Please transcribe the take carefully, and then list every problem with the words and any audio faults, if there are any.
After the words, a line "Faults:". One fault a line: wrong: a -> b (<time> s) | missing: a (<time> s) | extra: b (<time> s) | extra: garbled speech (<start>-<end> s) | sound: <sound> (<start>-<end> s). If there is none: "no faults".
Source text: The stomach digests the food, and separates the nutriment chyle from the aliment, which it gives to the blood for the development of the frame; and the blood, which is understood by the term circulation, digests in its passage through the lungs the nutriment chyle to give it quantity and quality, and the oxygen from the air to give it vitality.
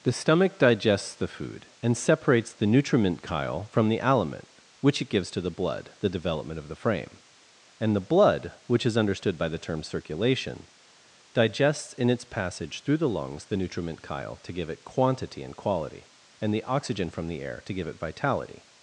The stomach digests the food, and separates the nutriment chyle from the aliment, which it gives to the blood the development of the frame; and the blood, which is understood by the term circulation, digests in its passage through the lungs the nutriment chyle to give it quantity and quality, and the oxygen from the air to give it vitality.
Faults:
missing: for (5.9 s)